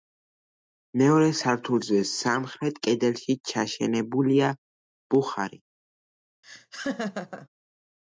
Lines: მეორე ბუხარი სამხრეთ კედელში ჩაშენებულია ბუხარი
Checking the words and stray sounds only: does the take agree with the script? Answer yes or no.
no